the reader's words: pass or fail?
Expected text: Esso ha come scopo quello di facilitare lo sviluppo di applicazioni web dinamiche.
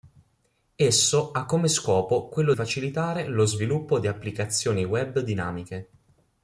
fail